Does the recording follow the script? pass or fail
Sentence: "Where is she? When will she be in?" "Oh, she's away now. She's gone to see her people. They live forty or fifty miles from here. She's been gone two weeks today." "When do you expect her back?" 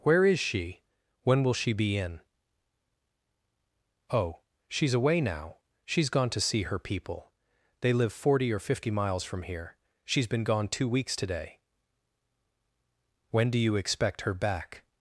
pass